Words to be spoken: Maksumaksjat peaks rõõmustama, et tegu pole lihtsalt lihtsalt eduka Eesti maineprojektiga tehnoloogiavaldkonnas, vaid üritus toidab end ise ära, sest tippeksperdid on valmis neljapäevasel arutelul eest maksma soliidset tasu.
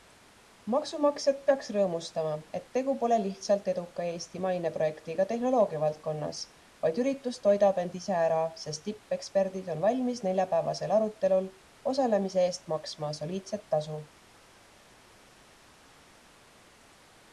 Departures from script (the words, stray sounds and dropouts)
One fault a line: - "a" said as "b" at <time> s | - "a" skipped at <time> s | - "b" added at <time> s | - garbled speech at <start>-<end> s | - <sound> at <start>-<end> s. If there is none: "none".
- "lihtsalt" skipped at 3.7 s
- "osalemise" added at 11.9 s